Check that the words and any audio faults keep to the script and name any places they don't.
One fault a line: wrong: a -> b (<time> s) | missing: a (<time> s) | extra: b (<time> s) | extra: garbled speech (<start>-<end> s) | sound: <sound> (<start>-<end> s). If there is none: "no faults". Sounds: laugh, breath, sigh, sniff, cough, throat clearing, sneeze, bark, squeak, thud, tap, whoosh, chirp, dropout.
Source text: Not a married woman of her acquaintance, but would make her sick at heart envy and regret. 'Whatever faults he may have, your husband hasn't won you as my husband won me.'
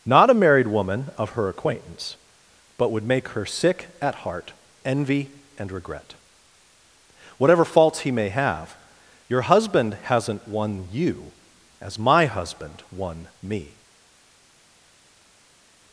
no faults